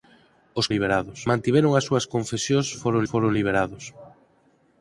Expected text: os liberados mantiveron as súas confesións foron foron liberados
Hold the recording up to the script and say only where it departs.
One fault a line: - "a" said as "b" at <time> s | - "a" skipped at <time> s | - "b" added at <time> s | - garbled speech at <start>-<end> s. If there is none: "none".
none